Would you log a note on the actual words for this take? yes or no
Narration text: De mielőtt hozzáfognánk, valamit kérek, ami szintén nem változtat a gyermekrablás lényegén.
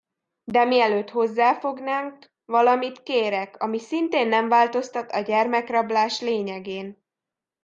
no